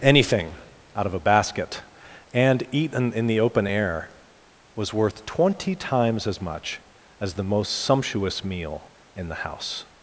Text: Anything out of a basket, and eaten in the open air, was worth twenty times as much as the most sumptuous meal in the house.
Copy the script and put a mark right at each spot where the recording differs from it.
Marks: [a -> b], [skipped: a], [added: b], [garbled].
Anything out of a basket, and eaten in the open air, was worth twenty times as much as the most sumptuous meal in the house.